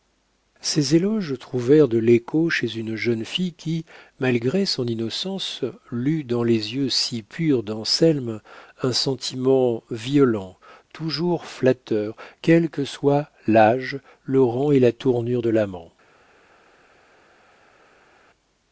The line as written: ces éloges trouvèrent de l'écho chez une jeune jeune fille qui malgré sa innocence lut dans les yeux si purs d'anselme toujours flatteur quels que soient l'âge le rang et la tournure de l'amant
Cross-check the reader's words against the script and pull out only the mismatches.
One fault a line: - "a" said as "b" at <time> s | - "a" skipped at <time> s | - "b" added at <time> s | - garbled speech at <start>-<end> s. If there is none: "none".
- "jeune" skipped at 3.2 s
- "sa" said as "son" at 4.7 s
- "un sentiment violent" added at 8.8 s